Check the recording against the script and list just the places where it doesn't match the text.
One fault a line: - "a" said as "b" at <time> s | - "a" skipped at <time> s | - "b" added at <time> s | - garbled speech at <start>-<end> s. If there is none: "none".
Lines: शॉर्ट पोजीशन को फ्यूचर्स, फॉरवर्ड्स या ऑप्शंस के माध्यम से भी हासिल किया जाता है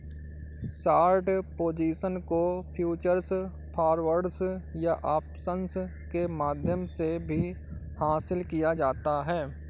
none